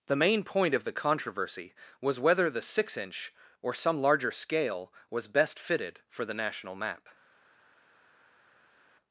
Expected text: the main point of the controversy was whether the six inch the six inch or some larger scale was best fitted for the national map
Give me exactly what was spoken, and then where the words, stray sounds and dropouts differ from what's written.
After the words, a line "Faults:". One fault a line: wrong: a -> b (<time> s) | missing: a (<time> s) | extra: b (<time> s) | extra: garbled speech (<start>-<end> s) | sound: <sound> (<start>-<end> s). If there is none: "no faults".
the main point of the controversy was whether the six inch or some larger scale was best fitted for the national map
Faults:
missing: the six inch (3.3 s)